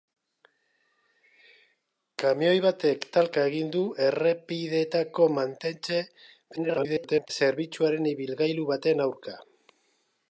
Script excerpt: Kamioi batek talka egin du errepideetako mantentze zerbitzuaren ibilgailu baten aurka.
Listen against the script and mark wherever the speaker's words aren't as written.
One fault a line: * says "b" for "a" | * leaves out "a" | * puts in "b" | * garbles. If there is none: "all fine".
* garbles